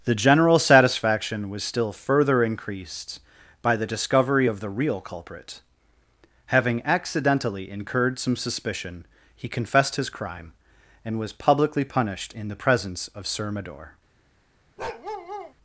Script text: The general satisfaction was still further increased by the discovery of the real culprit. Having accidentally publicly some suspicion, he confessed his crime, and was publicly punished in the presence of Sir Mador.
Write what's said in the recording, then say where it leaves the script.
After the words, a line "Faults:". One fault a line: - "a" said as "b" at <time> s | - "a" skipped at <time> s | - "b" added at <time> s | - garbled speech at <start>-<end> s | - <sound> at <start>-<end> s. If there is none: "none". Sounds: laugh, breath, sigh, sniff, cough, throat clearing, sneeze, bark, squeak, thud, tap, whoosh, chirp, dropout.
The general satisfaction was still further increased by the discovery of the real culprit. Having accidentally incurred some suspicion, he confessed his crime, and was publicly punished in the presence of Sir Mador.
Faults:
- "publicly" said as "incurred" at 7.7 s
- bark at 14.8-15.5 s